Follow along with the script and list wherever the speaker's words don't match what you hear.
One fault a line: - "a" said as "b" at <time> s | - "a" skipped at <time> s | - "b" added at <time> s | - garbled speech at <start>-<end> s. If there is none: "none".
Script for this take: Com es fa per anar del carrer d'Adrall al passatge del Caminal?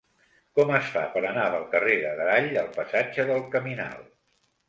none